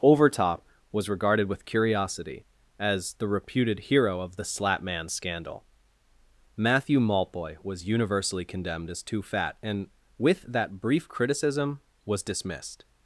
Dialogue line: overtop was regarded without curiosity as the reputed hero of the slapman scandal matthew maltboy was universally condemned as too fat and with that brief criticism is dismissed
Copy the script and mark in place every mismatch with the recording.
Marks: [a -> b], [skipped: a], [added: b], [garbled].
overtop was regarded [without -> with] curiosity as the reputed hero of the slapman scandal matthew maltboy was universally condemned as too fat and with that brief criticism [is -> was] dismissed